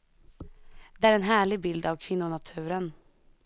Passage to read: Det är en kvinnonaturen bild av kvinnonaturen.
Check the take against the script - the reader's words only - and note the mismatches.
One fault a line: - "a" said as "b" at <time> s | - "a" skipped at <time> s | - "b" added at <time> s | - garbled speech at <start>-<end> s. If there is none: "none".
- "kvinnonaturen" said as "härlig" at 1.2 s